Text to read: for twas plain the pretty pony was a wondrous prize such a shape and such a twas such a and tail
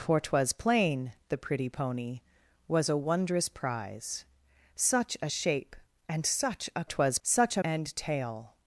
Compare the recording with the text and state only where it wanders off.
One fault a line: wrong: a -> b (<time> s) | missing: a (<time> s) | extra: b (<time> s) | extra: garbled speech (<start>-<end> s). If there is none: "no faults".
no faults